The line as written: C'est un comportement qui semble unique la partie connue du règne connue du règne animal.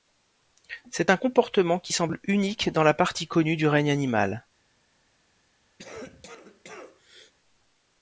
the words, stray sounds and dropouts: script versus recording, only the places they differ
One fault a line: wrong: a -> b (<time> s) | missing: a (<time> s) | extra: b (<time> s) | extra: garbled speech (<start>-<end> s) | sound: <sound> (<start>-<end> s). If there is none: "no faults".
extra: dans (2.7 s)
missing: connue du règne (3.9 s)
sound: cough (5.8-7.3 s)